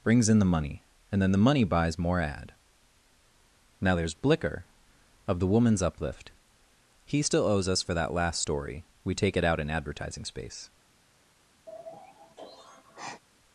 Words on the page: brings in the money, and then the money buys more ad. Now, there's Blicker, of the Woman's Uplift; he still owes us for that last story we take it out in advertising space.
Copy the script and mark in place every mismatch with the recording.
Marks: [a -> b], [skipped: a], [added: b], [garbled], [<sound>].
brings in the money, and then the money buys more ad. Now, there's Blicker, of the Woman's Uplift; he still owes us for that last story we take it out in advertising space. [sigh]